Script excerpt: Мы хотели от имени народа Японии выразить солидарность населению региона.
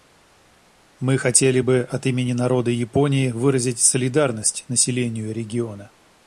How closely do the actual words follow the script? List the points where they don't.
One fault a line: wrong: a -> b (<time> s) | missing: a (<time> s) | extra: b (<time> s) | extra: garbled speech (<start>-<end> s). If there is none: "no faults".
extra: бы (1.6 s)